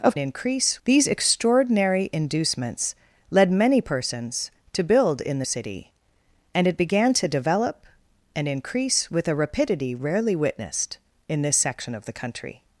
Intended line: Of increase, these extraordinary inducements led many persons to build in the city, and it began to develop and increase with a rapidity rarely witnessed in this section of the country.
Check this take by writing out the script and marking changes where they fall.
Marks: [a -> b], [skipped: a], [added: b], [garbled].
Of increase, these extraordinary inducements led many persons to build in the city, and it began to develop and increase with a rapidity rarely witnessed in this section of the country.